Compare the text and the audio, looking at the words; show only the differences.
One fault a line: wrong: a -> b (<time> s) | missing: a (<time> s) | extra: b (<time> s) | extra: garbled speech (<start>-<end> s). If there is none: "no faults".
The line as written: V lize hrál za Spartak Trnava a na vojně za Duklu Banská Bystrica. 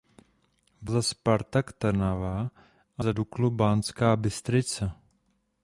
missing: lize hrál (0.9 s)
missing: na vojně (3.0 s)